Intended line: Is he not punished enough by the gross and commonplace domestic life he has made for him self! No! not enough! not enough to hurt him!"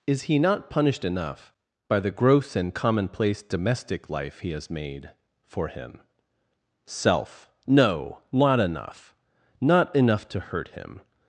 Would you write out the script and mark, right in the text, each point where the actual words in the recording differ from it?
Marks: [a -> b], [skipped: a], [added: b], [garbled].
Is he not punished enough by the gross and commonplace domestic life he has made for him self! No! not enough! not enough to hurt him!"